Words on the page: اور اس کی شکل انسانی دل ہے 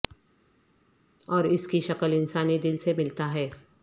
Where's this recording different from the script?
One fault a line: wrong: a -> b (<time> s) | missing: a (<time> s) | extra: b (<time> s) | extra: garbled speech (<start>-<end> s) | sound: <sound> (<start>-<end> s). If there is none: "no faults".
extra: سے ملتا (2.8 s)